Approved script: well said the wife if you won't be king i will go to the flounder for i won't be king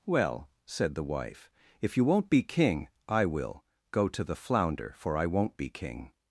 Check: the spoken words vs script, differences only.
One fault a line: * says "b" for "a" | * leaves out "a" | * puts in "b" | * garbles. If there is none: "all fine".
all fine